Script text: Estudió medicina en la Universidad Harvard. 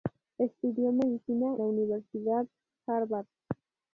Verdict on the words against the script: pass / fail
fail